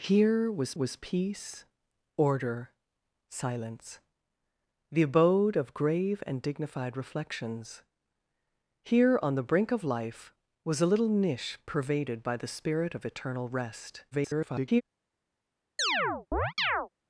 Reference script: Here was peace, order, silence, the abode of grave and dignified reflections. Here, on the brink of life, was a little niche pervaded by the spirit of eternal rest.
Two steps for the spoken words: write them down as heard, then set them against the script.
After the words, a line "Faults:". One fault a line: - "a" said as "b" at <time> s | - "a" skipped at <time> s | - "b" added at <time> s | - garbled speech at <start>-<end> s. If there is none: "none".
Here was was peace, order, silence, the abode of grave and dignified reflections. Here, on the brink of life, was a little niche pervaded by the spirit of eternal rest. [garbled]
Faults:
- "was" added at 0.7 s
- garbled speech at 14.1-14.8 s